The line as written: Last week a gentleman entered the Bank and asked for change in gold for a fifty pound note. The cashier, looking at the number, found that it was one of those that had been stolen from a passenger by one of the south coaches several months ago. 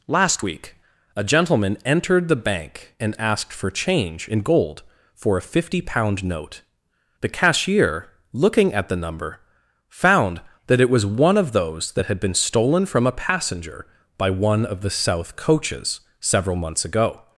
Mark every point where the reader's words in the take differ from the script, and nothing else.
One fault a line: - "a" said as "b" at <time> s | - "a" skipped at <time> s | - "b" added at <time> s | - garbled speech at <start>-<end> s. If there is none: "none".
none